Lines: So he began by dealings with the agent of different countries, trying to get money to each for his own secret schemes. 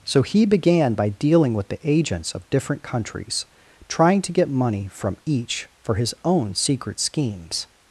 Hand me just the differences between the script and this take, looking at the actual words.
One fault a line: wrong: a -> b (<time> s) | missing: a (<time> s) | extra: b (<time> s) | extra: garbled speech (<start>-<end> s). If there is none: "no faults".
wrong: dealings -> dealing (1.1 s)
wrong: agent -> agents (1.8 s)
wrong: to -> from (4.9 s)